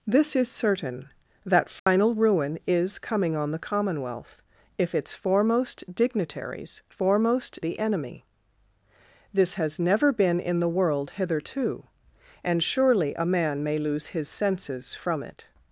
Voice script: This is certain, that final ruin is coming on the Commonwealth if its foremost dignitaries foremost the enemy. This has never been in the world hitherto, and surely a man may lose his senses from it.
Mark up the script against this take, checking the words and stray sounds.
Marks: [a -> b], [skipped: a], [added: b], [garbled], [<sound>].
This is certain, that final [dropout] ruin is coming on the Commonwealth if its foremost dignitaries foremost the enemy. This has never been in the world hitherto, and surely a man may lose his senses from it.